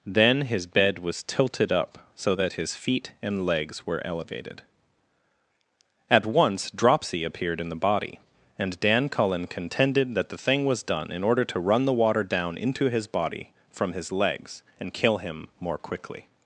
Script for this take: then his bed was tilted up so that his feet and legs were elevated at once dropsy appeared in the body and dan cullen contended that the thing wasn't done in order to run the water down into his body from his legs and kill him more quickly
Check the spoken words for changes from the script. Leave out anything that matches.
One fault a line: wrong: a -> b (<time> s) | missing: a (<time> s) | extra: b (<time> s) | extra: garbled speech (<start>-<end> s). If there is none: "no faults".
wrong: wasn't -> was (10.7 s)